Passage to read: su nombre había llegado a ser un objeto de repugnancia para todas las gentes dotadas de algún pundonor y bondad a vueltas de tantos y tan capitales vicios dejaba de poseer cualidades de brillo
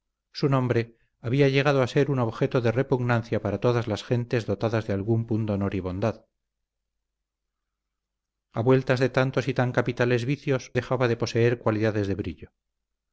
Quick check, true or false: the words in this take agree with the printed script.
true